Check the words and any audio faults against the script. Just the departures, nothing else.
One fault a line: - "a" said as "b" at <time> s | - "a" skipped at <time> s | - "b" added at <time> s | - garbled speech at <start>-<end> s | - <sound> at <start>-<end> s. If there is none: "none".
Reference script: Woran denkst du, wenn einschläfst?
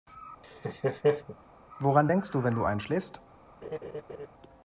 - laugh at 0.4-1.4 s
- "du" added at 2.5 s
- laugh at 3.6-4.3 s